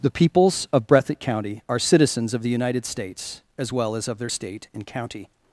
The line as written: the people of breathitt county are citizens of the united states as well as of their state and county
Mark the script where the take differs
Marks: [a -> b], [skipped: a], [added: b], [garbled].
the [people -> peoples] of breathitt county are citizens of the united states as well as of their state and county